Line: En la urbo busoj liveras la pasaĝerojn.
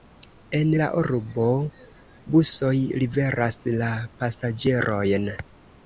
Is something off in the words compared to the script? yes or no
no